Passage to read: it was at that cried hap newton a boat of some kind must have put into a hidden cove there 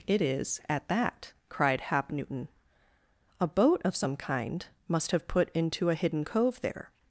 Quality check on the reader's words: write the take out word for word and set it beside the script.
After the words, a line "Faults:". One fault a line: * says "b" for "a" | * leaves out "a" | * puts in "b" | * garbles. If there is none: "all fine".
it is at that cried hap newton a boat of some kind must have put into a hidden cove there
Faults:
* says "is" for "was"